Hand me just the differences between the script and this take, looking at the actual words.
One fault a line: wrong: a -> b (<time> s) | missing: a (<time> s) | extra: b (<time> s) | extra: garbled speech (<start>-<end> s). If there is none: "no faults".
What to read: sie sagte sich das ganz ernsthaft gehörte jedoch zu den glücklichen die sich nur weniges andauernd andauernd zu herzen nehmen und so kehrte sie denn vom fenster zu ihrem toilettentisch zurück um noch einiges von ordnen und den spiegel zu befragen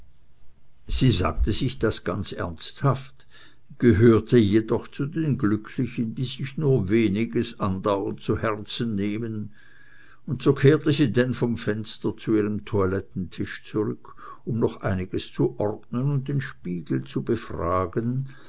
missing: andauernd (8.2 s)
wrong: von -> zu (15.3 s)